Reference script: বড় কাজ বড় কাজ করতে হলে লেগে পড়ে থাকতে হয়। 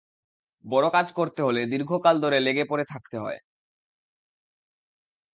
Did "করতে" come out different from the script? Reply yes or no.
yes